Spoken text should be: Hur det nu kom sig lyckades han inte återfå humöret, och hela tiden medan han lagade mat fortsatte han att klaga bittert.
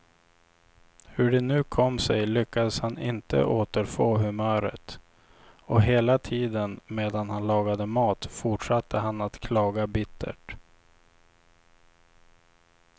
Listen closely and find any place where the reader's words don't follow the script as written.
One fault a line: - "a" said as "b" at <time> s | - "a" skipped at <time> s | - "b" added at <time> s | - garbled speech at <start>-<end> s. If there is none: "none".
none